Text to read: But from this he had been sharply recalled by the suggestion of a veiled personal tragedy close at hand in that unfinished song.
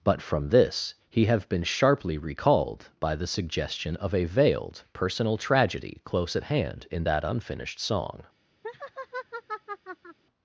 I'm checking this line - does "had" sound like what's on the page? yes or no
no